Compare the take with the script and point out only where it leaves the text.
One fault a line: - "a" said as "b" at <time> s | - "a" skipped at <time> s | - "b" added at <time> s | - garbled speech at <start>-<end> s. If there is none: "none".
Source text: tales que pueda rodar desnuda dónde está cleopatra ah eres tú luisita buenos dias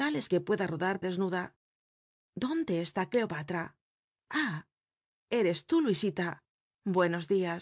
none